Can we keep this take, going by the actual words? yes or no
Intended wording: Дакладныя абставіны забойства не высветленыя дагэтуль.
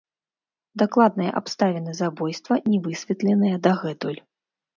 yes